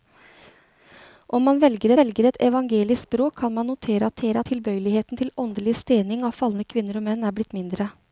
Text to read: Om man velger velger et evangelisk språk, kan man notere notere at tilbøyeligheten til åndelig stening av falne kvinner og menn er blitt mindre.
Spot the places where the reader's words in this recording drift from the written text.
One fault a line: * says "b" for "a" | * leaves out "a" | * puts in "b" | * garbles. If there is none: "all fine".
all fine